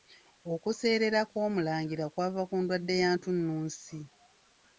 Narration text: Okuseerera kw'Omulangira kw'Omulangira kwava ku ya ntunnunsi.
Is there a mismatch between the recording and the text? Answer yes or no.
yes